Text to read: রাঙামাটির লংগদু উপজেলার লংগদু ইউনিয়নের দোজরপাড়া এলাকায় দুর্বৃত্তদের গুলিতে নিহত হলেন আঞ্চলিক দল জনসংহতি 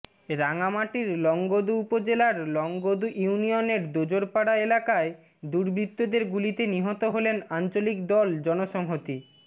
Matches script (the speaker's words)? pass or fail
pass